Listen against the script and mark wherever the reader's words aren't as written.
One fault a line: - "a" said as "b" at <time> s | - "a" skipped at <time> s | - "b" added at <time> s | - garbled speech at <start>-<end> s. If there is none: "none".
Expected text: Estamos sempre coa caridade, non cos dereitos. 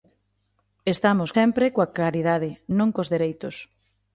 none